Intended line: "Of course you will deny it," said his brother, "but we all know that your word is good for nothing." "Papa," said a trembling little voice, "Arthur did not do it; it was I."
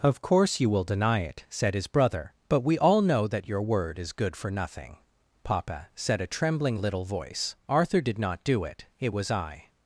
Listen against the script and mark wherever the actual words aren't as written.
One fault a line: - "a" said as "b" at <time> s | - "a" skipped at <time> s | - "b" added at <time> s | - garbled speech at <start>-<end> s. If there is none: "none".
none